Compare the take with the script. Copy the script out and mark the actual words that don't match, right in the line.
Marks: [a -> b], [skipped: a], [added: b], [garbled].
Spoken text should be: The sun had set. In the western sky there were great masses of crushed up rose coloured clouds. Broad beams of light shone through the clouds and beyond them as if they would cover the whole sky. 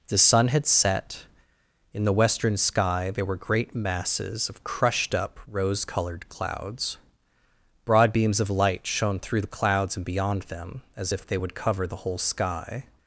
The sun had set. In the western sky there were great masses of crushed up rose coloured clouds. Broad beams of light shone through the clouds and beyond them as if they would cover the whole sky.